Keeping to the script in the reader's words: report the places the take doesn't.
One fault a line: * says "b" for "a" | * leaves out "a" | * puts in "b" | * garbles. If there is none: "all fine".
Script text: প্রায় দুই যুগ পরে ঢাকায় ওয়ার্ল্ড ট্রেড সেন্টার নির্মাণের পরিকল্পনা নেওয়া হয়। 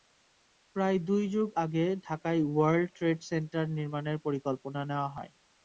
* says "আগে" for "পরে"